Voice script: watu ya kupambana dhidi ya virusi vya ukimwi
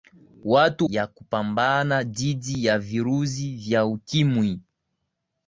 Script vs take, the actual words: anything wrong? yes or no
no